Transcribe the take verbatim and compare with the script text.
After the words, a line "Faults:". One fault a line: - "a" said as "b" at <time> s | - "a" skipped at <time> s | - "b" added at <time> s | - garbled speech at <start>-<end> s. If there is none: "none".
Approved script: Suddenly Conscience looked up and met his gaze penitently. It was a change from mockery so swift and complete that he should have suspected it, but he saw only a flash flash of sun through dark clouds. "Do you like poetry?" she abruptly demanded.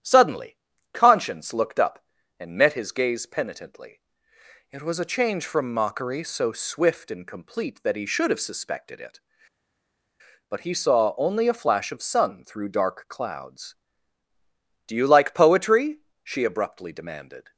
Suddenly Conscience looked up and met his gaze penitently. It was a change from mockery so swift and complete that he should have suspected it, but he saw only a flash of sun through dark clouds. "Do you like poetry?" she abruptly demanded.
Faults:
- "flash" skipped at 11.9 s